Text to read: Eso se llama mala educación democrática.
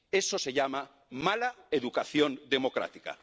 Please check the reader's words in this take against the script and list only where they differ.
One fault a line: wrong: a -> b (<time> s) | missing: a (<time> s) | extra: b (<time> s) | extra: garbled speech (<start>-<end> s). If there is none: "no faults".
no faults